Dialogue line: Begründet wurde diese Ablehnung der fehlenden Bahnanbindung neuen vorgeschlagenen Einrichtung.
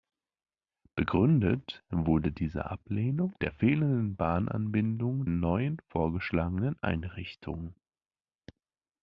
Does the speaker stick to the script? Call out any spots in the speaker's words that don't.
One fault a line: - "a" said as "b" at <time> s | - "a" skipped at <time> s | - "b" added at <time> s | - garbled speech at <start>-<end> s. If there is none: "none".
none